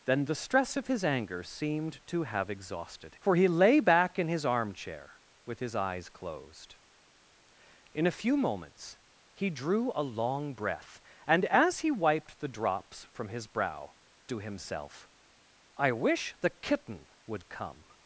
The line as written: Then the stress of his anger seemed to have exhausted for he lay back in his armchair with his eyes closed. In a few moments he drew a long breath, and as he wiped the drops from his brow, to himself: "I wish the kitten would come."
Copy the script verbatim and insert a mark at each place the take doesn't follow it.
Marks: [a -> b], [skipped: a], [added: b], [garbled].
Then the stress of his anger seemed to have exhausted for he lay back in his armchair with his eyes closed. In a few moments he drew a long breath, and as he wiped the drops from his brow, to himself: "I wish the kitten would come."